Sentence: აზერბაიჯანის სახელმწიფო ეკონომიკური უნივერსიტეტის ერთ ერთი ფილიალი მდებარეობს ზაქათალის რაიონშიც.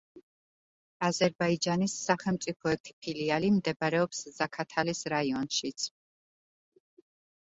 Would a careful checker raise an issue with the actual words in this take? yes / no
yes